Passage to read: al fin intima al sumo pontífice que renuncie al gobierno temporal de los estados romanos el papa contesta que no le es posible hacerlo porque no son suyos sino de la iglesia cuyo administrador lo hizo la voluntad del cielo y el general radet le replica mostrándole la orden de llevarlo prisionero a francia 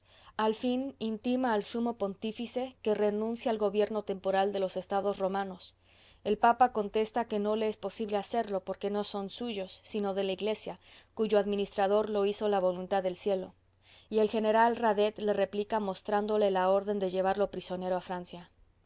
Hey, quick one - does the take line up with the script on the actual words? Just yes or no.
yes